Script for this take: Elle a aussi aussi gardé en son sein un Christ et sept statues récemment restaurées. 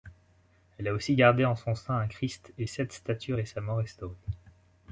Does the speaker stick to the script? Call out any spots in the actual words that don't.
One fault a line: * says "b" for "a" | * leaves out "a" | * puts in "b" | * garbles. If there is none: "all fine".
* leaves out "aussi"